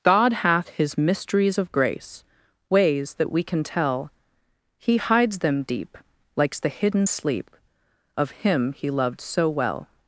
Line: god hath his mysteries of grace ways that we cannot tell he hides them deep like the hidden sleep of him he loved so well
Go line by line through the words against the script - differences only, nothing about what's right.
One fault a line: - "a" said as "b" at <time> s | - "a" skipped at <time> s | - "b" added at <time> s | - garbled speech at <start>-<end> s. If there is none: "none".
- "cannot" said as "can" at 3.4 s
- "like" said as "likes" at 6.3 s